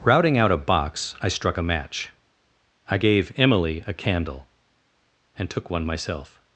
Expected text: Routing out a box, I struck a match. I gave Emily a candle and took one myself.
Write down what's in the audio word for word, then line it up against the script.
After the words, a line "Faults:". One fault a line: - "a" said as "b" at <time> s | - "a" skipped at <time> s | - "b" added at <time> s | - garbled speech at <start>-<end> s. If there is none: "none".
Routing out a box, I struck a match. I gave Emily a candle and took one myself.
Faults:
none